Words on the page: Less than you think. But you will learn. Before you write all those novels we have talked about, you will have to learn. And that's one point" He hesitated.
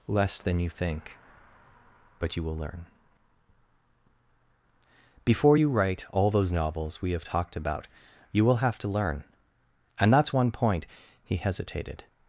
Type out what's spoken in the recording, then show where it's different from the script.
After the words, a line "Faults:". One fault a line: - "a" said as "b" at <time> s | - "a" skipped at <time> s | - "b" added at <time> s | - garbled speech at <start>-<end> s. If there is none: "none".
Less than you think. But you will learn. Before you write all those novels we have talked about, you will have to learn. And that's one point" He hesitated.
Faults:
none